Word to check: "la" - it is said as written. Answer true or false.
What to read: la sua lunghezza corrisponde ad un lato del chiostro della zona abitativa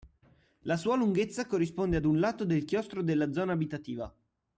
true